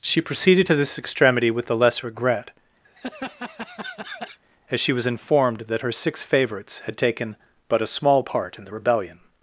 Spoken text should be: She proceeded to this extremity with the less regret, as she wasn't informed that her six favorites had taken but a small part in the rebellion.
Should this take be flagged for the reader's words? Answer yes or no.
yes